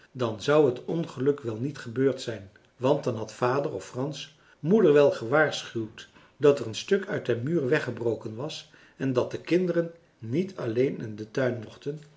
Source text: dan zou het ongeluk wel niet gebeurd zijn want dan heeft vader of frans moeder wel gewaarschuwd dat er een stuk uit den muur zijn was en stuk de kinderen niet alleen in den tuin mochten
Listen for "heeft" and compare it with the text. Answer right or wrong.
wrong